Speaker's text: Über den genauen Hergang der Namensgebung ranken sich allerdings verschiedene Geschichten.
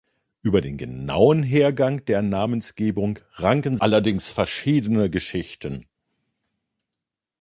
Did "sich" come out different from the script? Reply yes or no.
yes